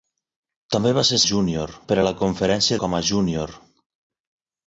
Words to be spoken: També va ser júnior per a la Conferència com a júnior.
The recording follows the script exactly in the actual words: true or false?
true